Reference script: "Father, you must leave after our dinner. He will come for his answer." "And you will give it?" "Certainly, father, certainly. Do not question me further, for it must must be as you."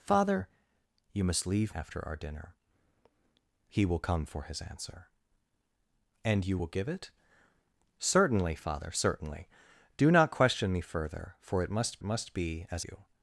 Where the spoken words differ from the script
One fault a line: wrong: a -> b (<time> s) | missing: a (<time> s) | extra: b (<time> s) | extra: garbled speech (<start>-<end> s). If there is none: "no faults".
no faults